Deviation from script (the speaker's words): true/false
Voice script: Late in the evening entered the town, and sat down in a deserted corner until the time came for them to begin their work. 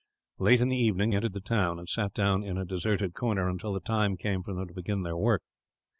false